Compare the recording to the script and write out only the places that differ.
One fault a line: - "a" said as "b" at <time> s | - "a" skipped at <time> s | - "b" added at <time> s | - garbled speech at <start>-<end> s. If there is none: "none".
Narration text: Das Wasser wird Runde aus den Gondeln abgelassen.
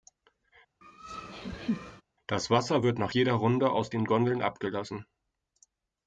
- "nach jeder" added at 3.0 s